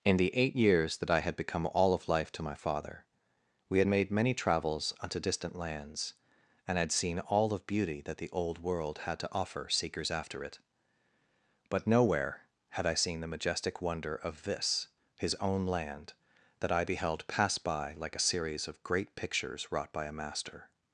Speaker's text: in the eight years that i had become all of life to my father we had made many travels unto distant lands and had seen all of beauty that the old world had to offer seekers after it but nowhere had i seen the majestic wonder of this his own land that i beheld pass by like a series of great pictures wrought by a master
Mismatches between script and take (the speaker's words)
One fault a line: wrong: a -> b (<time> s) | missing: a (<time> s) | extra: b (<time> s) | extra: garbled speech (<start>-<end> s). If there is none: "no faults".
no faults